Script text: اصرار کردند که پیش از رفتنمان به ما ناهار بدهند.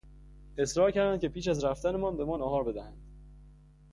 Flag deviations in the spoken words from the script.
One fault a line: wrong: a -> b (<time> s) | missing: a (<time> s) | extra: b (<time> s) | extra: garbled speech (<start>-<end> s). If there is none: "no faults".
no faults